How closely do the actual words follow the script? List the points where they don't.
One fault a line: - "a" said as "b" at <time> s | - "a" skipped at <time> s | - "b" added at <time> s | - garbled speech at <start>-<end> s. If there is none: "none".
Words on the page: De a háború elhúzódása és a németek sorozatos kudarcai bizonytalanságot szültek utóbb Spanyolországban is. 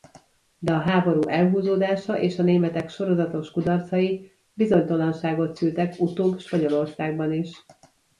none